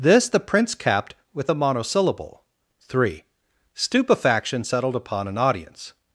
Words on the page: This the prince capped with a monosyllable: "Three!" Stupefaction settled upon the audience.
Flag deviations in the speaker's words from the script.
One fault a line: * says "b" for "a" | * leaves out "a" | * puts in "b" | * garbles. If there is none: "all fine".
* says "an" for "the"